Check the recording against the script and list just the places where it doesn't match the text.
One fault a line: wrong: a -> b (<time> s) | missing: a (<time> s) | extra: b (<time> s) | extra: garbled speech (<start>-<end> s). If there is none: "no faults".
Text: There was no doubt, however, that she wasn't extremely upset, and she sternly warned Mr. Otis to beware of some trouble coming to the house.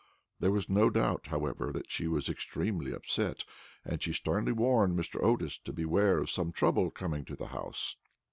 wrong: wasn't -> was (2.1 s)